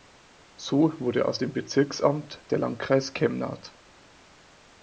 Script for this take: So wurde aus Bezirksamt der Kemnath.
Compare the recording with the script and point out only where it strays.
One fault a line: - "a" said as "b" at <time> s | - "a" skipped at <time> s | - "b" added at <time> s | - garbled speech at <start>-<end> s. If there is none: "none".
- "dem" added at 1.4 s
- "Landkreis" added at 2.6 s